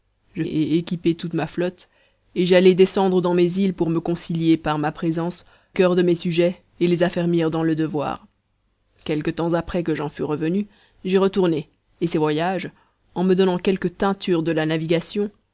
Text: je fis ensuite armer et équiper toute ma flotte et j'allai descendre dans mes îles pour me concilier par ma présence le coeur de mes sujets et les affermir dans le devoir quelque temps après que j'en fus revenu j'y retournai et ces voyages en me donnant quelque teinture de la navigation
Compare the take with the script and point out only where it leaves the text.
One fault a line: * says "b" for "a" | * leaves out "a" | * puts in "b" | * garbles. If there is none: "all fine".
* leaves out "fis ensuite armer"
* leaves out "le"